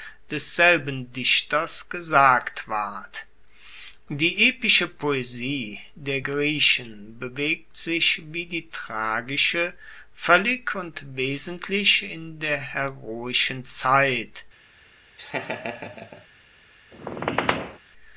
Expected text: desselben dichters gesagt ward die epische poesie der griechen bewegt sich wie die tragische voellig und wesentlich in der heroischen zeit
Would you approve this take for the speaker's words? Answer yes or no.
yes